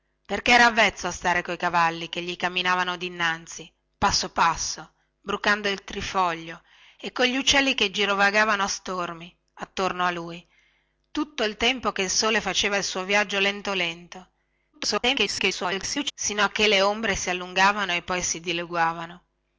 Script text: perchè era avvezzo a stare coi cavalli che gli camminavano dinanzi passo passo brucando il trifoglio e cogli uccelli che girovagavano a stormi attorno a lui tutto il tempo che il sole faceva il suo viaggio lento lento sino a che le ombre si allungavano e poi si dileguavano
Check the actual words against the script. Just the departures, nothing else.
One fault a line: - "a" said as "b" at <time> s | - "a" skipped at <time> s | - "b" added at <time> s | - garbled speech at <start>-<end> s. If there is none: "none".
- garbled speech at 14.7-16.1 s